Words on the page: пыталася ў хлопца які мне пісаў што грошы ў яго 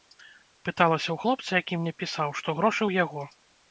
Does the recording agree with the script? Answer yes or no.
yes